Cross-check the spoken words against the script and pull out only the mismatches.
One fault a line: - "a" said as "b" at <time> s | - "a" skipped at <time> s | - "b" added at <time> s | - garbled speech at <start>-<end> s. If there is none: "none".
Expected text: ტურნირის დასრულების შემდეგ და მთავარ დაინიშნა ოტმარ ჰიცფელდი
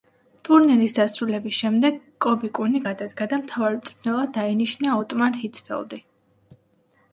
- "კობი კუნი გადადგა" added at 2.3 s
- "მწვრთნელად" added at 3.8 s